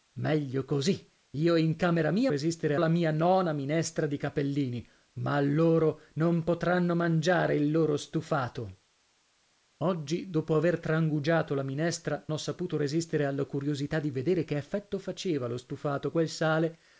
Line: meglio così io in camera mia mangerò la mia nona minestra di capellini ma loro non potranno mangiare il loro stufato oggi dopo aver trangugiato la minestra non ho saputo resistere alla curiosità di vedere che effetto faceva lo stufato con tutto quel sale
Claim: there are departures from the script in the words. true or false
true